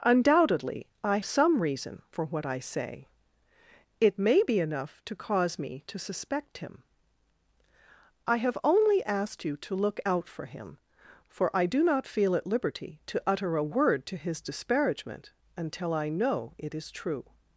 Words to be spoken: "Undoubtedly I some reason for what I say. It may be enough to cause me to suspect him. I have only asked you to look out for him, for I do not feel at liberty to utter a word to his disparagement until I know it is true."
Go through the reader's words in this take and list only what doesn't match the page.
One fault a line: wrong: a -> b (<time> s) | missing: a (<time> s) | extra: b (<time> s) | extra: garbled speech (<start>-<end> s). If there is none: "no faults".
no faults